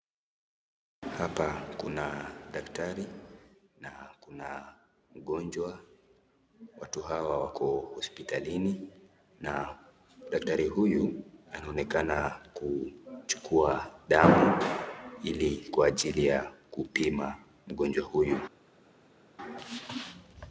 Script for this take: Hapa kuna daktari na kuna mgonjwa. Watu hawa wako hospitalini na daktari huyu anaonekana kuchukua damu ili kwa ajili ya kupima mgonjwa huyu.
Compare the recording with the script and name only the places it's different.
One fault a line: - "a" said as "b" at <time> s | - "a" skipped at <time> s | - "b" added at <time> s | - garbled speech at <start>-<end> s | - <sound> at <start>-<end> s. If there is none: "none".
none